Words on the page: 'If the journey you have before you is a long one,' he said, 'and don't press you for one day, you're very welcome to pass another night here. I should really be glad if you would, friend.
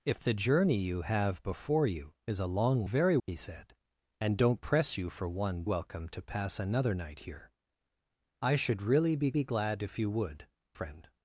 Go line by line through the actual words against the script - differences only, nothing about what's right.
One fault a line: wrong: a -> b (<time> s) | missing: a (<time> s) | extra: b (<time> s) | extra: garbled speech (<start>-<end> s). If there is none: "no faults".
wrong: one -> very (2.8 s)
missing: day you're very (5.6 s)
extra: be (9.3 s)